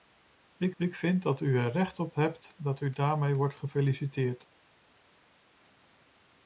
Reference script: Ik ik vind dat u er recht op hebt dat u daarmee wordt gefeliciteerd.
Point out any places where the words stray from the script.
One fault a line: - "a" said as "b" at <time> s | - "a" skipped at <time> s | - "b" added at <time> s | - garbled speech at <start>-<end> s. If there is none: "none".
none